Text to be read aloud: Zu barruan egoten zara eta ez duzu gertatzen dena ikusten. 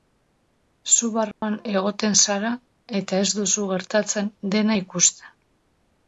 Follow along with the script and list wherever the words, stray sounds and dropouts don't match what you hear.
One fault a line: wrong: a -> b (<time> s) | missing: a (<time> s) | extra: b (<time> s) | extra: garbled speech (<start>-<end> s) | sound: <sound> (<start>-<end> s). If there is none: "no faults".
sound: dropout (1.3-1.4 s)